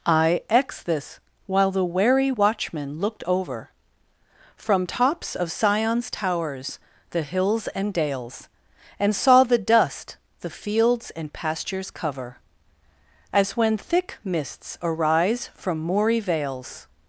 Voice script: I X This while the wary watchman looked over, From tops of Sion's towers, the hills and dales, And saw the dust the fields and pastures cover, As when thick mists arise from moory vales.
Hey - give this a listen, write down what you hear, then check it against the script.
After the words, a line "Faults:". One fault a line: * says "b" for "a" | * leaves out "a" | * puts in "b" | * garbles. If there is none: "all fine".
I X This while the wary watchman looked over, From tops of Sion's towers, the hills and dales, And saw the dust the fields and pastures cover, As when thick mists arise from moory vales.
Faults:
all fine